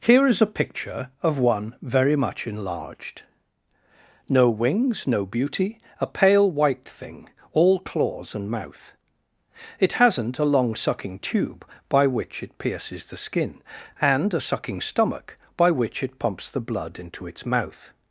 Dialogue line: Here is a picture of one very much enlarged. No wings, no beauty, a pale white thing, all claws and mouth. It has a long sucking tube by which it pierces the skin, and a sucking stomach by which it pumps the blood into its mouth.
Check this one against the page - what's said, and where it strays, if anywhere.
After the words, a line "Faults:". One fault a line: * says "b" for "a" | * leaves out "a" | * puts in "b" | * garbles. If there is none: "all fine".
Here is a picture of one very much enlarged. No wings, no beauty, a pale white thing, all claws and mouth. It hasn't a long sucking tube by which it pierces the skin, and a sucking stomach by which it pumps the blood into its mouth.
Faults:
* says "hasn't" for "has"